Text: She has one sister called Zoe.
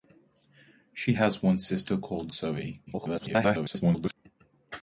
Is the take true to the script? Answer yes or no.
no